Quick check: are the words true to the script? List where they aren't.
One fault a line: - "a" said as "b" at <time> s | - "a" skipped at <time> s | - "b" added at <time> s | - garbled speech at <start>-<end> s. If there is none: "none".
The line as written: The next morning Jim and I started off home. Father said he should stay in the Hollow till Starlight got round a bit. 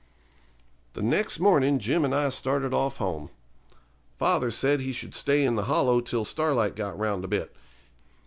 none